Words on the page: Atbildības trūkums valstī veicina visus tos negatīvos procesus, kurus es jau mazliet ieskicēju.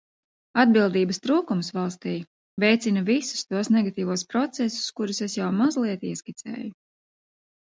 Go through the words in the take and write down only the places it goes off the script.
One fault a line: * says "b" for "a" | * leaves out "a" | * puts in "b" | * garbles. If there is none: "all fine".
all fine